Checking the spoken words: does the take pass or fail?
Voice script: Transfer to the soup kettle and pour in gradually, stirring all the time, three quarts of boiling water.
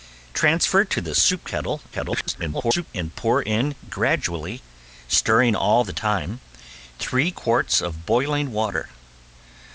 fail